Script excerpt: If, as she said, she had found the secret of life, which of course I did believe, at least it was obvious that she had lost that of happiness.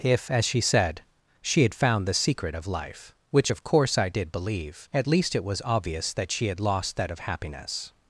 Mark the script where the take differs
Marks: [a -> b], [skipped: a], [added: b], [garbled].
If, as she said, she had found the secret of life, which of course I did believe, at least it was obvious that she had lost that of happiness.